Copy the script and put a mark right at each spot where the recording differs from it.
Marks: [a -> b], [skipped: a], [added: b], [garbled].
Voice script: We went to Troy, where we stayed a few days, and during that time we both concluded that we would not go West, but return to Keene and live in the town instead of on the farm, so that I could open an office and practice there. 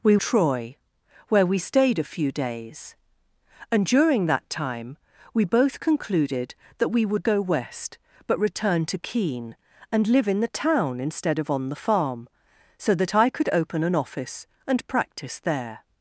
We [skipped: went to] Troy, where we stayed a few days, and during that time we both concluded that we would [skipped: not] go West, but return to Keene and live in the town instead of on the farm, so that I could open an office and practice there.